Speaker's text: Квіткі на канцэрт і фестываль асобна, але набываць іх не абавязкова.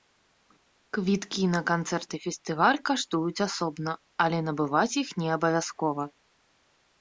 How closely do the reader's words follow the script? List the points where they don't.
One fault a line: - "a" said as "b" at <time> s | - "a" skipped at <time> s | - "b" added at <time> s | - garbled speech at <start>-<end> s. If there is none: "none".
- "каштуюць" added at 2.9 s